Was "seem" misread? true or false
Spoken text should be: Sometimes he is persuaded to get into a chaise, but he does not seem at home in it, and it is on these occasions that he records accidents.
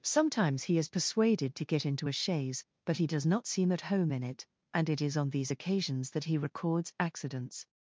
false